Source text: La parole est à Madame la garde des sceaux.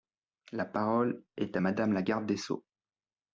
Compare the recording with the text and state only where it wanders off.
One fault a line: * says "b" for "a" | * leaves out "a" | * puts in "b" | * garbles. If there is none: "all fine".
all fine